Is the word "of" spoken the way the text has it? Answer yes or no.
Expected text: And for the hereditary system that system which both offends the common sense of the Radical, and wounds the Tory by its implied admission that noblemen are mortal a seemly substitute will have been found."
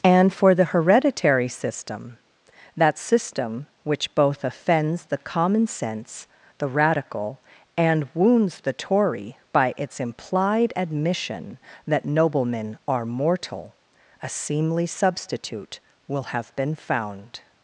no